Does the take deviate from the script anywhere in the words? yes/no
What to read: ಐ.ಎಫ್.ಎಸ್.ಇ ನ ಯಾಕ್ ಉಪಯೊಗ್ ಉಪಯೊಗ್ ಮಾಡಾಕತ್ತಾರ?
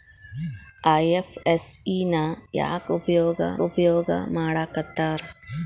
no